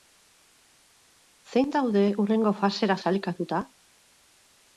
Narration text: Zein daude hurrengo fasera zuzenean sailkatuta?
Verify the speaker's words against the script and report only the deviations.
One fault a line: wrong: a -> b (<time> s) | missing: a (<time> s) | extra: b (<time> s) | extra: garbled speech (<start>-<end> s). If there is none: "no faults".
missing: zuzenean (3.0 s)